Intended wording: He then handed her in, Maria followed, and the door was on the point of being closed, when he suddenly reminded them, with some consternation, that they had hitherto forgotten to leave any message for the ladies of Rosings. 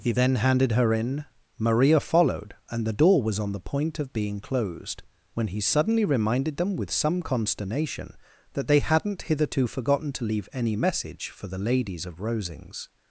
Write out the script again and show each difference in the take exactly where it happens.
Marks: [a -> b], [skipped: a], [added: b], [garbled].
He then handed her in, Maria followed, and the door was on the point of being closed, when he suddenly reminded them, with some consternation, that they [had -> hadn't] hitherto forgotten to leave any message for the ladies of Rosings.